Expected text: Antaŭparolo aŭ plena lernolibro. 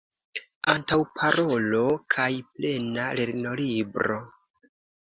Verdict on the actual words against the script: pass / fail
fail